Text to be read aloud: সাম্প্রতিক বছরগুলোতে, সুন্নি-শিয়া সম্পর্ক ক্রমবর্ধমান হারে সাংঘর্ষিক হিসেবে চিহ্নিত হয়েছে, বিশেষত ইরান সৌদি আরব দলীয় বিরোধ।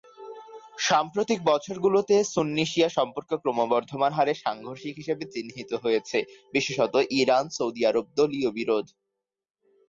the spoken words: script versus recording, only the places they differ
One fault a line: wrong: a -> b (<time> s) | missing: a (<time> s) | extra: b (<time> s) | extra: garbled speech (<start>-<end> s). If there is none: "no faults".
no faults